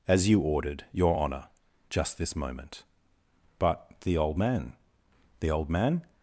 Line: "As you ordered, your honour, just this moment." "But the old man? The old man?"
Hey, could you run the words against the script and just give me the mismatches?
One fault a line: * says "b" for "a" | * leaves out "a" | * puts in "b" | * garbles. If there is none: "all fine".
all fine